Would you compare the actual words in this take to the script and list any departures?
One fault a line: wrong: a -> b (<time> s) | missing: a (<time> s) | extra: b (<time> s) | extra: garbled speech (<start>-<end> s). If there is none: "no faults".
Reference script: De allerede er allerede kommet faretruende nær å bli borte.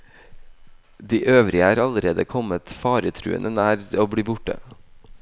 wrong: allerede -> øvrige (1.3 s)